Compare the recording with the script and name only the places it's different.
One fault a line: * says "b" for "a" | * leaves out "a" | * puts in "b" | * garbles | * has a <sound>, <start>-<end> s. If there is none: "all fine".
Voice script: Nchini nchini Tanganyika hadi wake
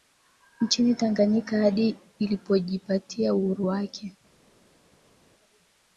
* leaves out "nchini"
* puts in "ilipojipatia uhuru"